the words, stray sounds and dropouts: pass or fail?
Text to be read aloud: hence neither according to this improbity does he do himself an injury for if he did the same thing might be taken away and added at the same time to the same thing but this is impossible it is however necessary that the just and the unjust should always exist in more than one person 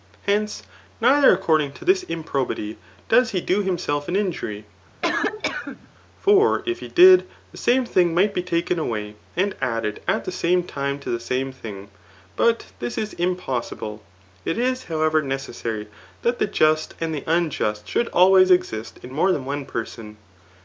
fail